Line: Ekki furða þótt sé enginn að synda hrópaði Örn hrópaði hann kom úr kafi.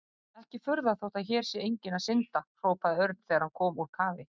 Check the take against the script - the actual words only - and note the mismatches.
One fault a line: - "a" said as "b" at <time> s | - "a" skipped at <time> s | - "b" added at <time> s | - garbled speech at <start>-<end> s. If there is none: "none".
- "hér" added at 1.3 s
- "hrópaði" said as "þegar" at 3.3 s